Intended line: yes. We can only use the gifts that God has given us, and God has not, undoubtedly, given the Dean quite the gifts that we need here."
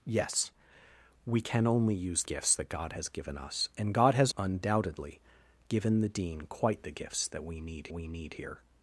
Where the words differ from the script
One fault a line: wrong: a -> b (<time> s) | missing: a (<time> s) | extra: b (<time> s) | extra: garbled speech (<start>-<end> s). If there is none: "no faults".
missing: the (2.2 s)
missing: not (4.3 s)
extra: we need (7.9 s)